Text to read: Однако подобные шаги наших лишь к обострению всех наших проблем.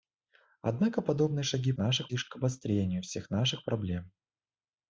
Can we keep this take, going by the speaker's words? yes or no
yes